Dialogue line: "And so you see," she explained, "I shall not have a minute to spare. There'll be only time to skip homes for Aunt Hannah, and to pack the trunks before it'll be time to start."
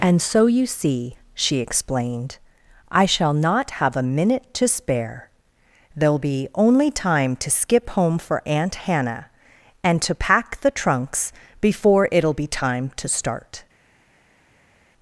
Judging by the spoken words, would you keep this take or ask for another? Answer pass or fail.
fail